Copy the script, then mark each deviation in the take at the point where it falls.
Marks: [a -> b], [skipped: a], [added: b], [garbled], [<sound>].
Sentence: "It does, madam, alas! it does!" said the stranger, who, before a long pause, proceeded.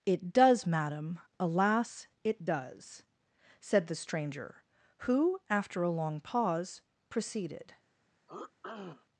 "It does, madam, alas! it does!" said the stranger, who, [before -> after] a long pause, proceeded. [throat clearing]